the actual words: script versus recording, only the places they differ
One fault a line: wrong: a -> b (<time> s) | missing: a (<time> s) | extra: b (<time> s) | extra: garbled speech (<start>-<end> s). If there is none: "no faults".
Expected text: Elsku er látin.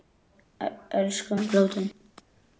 no faults